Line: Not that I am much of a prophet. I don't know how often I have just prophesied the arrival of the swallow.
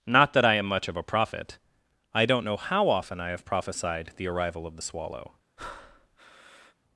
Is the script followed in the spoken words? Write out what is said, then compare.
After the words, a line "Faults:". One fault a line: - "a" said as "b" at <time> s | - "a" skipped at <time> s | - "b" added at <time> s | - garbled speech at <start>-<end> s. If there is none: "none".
Not that I am much of a prophet. I don't know how often I have prophesied the arrival of the swallow.
Faults:
- "just" skipped at 3.5 s